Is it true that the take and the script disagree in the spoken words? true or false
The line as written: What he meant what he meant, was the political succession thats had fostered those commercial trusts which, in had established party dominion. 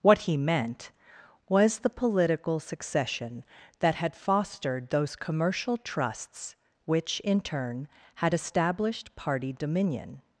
true